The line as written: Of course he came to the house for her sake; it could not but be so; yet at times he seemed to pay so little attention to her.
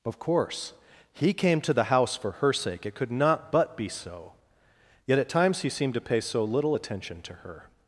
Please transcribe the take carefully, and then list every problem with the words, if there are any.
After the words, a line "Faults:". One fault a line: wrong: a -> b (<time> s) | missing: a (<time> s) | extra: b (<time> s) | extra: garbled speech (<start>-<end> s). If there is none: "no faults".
Of course he came to the house for her sake; it could not but be so; yet at times he seemed to pay so little attention to her.
Faults:
no faults